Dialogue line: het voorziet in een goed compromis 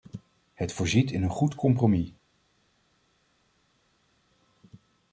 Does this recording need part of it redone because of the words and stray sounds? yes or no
no